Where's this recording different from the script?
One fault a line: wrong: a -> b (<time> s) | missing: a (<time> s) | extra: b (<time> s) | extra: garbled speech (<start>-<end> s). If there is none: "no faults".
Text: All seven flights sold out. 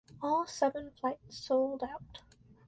no faults